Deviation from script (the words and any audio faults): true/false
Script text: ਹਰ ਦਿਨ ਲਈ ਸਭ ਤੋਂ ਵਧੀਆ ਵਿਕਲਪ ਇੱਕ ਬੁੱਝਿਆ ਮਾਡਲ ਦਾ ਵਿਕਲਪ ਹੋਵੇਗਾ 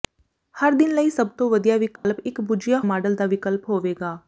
true